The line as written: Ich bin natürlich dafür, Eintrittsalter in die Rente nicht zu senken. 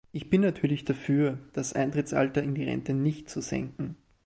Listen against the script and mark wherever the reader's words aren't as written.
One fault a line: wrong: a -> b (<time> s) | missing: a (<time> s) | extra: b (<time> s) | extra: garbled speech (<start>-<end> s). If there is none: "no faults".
extra: das (1.5 s)